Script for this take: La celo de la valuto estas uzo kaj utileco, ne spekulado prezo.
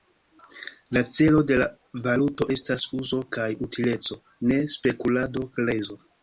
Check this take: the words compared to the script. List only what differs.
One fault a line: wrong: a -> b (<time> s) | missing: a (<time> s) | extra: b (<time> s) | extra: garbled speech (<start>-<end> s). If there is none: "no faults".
no faults